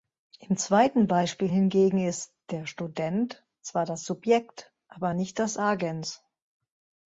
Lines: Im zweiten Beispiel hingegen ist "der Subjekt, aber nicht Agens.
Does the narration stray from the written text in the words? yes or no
yes